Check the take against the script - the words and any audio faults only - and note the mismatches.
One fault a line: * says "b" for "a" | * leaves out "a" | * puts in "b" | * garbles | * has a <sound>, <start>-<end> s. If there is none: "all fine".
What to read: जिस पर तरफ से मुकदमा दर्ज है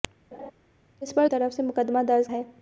* has a laugh, 0.3-0.5 s